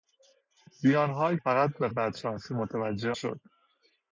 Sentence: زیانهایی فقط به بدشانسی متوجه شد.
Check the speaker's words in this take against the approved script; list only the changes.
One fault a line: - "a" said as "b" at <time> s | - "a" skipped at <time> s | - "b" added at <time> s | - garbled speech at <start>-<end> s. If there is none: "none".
none